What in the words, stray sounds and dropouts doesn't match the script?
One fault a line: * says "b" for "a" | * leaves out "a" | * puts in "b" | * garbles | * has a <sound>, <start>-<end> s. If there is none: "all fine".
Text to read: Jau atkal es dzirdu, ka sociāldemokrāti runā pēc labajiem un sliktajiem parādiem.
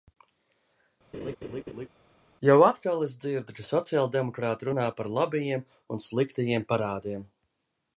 * has a laugh, 1.1-1.9 s
* says "par" for "pēc"